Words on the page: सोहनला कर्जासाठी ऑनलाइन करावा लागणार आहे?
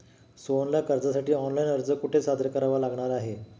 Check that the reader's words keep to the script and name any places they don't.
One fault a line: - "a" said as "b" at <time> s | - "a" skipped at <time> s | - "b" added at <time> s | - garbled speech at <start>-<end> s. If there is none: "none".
- "अर्ज कुठे सादर" added at 1.7 s